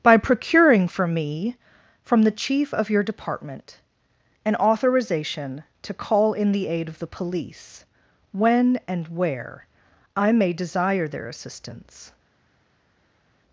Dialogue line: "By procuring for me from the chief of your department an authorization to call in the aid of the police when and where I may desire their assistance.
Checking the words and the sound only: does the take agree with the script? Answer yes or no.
yes